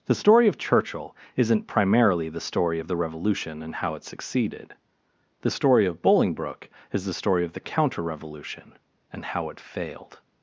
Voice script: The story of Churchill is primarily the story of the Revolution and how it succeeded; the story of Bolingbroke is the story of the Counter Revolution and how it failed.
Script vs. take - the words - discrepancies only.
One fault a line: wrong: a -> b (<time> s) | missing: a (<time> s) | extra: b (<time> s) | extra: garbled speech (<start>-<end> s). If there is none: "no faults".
wrong: is -> isn't (1.4 s)